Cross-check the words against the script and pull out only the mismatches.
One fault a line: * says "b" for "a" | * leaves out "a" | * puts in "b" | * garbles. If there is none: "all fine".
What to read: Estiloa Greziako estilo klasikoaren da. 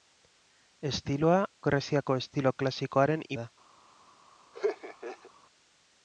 all fine